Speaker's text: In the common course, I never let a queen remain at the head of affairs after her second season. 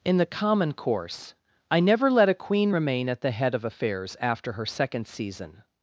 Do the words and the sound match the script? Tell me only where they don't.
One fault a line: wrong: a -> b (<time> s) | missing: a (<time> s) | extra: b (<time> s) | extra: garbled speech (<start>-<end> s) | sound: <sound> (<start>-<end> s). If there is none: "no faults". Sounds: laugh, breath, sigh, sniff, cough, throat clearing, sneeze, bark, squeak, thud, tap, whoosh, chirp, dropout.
no faults